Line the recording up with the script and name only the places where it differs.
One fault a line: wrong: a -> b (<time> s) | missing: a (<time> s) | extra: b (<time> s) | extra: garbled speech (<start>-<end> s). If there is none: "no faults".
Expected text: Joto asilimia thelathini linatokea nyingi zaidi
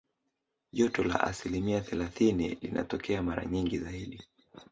extra: la (1.0 s)
extra: mara (3.2 s)